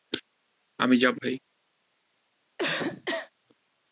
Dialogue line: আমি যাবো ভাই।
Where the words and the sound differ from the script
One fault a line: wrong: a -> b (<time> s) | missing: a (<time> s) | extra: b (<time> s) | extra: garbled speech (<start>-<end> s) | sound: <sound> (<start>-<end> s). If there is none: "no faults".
sound: cough (2.6-3.3 s)